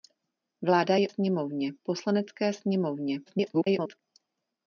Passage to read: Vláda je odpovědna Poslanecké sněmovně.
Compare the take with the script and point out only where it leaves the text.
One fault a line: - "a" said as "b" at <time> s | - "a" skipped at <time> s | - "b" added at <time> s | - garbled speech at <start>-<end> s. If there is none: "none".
- "odpovědna" said as "sněmovně" at 1.1 s
- garbled speech at 3.3-4.0 s